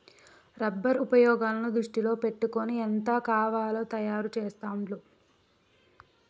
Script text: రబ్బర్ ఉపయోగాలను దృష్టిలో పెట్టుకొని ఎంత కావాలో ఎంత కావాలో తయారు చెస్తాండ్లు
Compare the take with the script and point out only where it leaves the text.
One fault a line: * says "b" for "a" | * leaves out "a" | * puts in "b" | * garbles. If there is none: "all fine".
* leaves out "ఎంత కావాలో"